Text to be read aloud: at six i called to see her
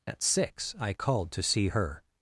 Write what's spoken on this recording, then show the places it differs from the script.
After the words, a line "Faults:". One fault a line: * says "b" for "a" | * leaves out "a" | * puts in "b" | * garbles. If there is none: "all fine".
at six i called to see her
Faults:
all fine